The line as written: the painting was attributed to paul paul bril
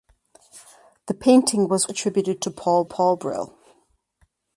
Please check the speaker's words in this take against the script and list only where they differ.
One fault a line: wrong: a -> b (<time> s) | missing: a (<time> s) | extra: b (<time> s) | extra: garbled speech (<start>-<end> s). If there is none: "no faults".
no faults